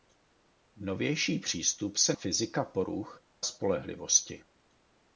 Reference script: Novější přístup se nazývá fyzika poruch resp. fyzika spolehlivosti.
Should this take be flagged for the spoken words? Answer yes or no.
yes